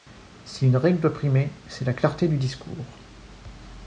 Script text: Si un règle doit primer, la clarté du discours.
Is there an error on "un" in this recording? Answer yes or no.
yes